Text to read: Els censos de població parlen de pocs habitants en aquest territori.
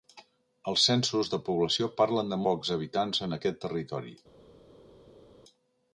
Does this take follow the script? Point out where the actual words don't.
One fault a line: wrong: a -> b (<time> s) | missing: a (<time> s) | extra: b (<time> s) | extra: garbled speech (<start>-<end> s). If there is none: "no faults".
no faults